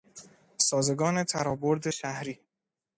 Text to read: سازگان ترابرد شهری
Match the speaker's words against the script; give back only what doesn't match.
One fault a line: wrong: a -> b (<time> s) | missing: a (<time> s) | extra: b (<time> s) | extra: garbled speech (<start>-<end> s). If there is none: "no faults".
no faults